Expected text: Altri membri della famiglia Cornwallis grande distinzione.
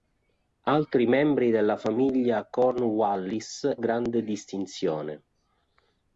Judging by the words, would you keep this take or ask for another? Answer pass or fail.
pass